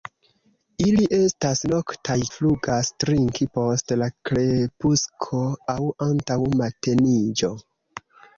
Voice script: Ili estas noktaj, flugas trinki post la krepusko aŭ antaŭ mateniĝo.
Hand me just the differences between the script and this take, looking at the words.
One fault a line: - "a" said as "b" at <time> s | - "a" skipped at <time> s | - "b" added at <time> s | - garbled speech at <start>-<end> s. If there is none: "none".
none